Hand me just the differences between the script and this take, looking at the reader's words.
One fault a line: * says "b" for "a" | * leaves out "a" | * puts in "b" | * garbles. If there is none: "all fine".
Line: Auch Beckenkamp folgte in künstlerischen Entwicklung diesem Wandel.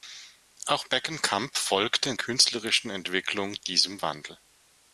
all fine